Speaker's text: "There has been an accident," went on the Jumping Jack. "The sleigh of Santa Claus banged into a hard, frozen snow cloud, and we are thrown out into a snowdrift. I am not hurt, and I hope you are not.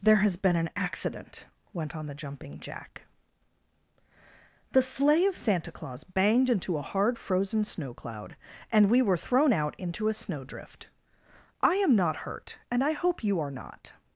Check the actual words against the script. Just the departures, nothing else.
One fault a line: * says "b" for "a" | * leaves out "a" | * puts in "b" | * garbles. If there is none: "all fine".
* says "were" for "are"